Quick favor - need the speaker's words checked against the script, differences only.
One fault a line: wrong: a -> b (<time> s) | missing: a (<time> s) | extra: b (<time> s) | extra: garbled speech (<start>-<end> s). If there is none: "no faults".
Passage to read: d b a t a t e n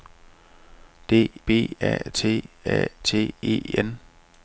no faults